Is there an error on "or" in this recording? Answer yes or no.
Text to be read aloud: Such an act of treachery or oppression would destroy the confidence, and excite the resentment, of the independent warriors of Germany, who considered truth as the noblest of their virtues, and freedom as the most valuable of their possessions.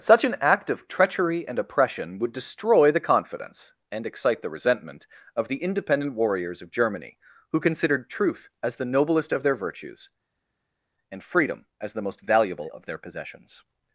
yes